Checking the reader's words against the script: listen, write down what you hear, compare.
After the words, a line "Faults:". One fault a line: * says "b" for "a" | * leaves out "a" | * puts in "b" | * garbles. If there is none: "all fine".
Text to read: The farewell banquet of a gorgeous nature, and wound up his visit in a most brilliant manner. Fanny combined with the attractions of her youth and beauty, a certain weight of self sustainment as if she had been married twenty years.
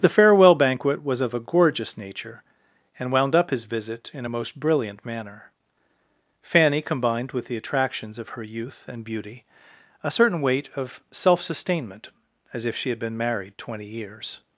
The farewell banquet was of a gorgeous nature, and wound up his visit in a most brilliant manner. Fanny combined with the attractions of her youth and beauty, a certain weight of self sustainment as if she had been married twenty years.
Faults:
* puts in "was"